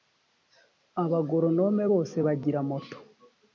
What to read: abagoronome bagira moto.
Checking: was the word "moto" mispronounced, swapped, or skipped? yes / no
no